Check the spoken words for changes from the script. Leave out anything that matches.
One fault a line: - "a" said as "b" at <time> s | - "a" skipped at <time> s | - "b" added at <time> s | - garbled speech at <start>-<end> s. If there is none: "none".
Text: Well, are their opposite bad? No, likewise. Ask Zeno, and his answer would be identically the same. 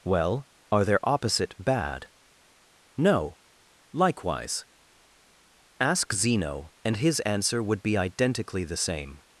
none